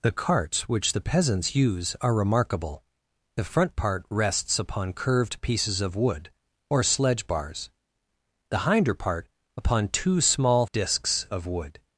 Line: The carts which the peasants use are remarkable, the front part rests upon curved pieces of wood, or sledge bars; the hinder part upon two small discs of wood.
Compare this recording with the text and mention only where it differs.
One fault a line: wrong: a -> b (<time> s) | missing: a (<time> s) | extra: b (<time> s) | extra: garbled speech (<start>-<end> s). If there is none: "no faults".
no faults